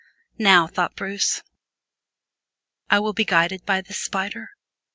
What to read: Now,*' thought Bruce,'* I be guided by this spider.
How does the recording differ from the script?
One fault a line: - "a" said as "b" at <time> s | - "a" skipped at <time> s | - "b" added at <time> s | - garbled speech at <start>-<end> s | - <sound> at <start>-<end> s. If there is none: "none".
- "will" added at 3.0 s